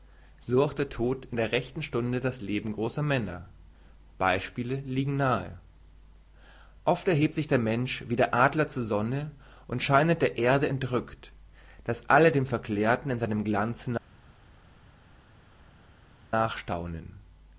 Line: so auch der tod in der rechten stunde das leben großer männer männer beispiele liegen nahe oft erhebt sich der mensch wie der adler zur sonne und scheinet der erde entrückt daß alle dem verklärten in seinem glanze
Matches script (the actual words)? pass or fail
fail